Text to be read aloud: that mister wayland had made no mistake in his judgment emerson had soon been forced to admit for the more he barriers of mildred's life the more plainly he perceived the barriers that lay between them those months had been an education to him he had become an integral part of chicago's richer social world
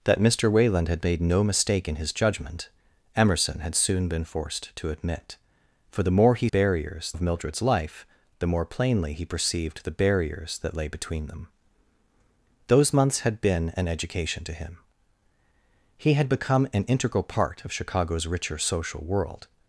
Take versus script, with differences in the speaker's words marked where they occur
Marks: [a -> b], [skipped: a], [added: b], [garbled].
that mister wayland had made no mistake in his judgment emerson had soon been forced to admit for the more he barriers of mildred's life the more plainly he perceived the barriers that lay between them those months had been an education to him he had become an integral part of chicago's richer social world